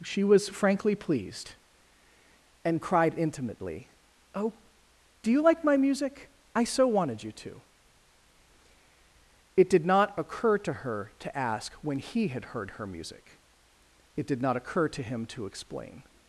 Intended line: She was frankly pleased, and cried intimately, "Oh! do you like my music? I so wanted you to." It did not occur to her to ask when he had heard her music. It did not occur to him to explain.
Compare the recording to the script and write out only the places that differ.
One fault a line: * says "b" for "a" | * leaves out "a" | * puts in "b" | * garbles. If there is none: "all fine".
all fine